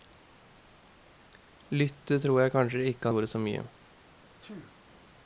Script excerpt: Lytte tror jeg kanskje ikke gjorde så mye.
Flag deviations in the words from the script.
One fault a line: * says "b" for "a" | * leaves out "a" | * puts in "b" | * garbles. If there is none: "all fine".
all fine